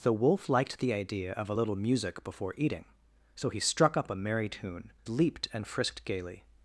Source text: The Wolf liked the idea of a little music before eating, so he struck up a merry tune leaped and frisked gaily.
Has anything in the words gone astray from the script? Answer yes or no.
no